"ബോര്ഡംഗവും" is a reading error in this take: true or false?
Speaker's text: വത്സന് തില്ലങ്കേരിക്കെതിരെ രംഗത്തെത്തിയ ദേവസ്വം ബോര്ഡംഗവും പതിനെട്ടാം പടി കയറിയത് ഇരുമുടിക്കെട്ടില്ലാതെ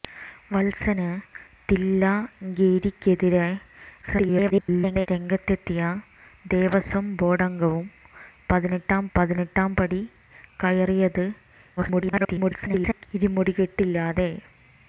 false